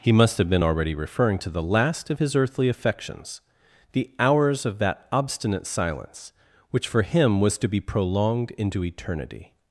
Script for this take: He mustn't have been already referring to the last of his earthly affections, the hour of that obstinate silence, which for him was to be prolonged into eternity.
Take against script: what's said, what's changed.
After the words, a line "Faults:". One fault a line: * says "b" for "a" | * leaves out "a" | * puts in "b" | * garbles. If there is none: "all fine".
He must have been already referring to the last of his earthly affections, the hours of that obstinate silence, which for him was to be prolonged into eternity.
Faults:
* says "must" for "mustn't"
* says "hours" for "hour"